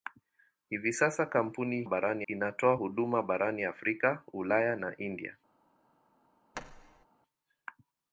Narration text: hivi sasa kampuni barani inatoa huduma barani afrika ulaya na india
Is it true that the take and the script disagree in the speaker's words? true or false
false